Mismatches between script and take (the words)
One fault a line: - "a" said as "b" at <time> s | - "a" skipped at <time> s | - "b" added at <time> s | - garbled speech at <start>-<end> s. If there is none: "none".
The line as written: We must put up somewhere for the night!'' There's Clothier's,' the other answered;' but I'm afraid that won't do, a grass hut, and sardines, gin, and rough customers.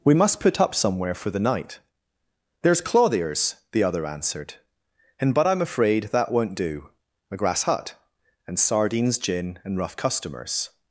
- "and" added at 5.2 s